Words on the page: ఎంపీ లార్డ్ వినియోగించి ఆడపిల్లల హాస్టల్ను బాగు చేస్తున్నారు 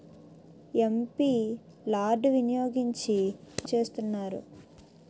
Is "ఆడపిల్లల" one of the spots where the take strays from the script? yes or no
yes